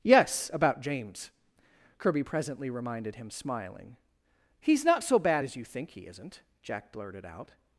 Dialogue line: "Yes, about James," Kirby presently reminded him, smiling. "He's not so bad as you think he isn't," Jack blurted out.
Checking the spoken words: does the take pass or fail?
pass